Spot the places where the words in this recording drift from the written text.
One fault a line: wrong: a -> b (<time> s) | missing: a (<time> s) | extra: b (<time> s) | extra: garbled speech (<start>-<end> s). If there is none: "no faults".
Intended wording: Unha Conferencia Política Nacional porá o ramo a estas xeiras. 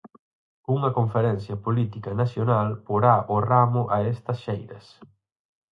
no faults